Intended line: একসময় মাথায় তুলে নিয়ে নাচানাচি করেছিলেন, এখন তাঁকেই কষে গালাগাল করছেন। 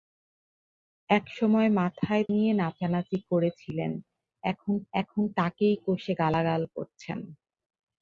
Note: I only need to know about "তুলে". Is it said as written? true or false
false